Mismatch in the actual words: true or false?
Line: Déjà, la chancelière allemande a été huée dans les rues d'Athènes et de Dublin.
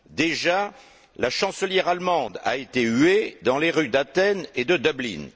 false